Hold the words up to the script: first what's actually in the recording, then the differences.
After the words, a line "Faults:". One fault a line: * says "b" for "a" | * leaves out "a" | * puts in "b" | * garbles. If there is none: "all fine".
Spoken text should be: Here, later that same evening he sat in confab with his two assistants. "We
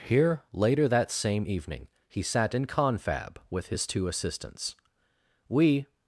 Here, later that same evening he sat in confab with his two assistants. "We
Faults:
all fine